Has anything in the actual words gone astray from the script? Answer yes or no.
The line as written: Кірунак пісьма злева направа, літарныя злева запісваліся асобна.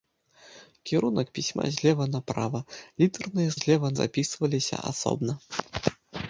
no